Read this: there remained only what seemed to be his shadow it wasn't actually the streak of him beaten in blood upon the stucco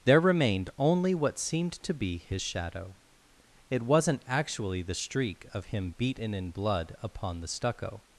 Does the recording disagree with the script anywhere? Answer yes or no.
no